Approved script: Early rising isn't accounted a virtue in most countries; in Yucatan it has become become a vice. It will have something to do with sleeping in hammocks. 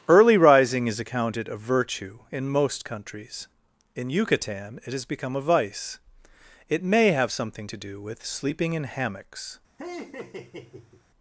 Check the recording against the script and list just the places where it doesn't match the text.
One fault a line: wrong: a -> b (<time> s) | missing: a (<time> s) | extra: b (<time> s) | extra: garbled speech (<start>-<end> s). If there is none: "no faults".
wrong: isn't -> is (0.9 s)
missing: become (5.4 s)
wrong: will -> may (6.8 s)